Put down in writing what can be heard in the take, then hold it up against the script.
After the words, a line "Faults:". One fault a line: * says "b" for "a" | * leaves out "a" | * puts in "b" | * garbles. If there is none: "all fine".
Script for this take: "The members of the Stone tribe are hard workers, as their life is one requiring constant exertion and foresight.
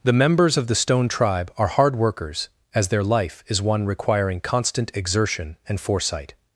"The members of the Stone tribe are hard workers, as their life is one requiring constant exertion and foresight.
Faults:
all fine